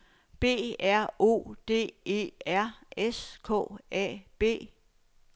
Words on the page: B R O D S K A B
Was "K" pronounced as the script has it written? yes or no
yes